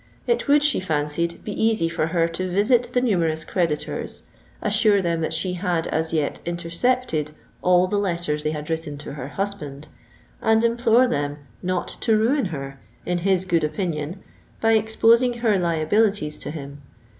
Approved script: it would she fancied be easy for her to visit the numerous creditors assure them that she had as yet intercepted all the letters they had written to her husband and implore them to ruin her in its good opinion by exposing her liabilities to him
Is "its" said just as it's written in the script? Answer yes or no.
no